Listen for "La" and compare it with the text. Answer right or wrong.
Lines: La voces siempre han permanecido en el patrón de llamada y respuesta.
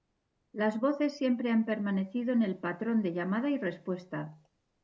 wrong